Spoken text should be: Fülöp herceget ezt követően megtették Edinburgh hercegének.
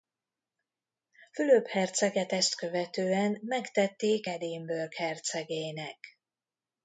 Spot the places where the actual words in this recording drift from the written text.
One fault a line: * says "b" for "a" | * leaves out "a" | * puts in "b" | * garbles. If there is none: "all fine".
all fine